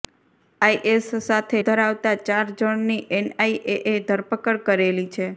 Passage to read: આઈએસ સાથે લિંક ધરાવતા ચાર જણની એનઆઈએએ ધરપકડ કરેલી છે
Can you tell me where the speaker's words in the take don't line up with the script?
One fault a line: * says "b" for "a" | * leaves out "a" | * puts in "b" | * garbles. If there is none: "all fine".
* leaves out "લિંક"